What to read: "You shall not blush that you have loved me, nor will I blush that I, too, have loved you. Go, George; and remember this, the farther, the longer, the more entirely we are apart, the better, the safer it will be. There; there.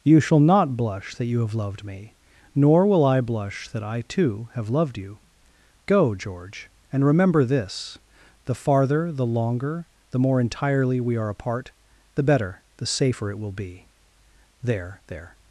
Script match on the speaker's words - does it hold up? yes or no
yes